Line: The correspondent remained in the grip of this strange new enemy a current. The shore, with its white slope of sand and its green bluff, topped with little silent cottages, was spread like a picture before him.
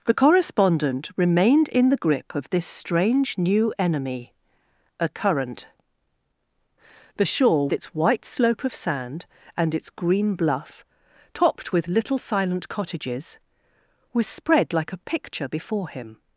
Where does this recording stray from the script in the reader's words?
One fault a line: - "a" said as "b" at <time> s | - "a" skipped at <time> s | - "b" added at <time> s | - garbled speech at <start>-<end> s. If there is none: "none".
- "with" skipped at 7.7 s